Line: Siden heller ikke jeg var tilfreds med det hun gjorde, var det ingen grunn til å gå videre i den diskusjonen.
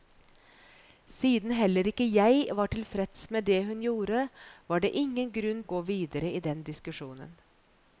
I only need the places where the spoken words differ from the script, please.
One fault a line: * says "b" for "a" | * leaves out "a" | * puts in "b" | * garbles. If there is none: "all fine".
* leaves out "til"